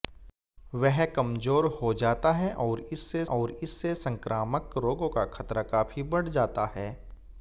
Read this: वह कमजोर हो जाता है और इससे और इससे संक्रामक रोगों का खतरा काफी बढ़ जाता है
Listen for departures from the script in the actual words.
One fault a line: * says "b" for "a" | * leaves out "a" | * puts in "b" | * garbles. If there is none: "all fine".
all fine